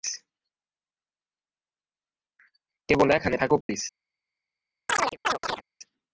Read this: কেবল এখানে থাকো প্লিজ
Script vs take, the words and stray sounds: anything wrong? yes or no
yes